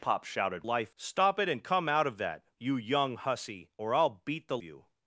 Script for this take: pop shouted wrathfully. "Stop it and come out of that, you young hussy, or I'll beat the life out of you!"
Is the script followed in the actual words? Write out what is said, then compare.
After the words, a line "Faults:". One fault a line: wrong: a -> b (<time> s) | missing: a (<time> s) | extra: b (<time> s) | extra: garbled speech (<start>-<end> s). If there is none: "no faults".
pop shouted life. "Stop it and come out of that, you young hussy, or I'll beat the you!"
Faults:
wrong: wrathfully -> life (0.6 s)
missing: life out of (4.6 s)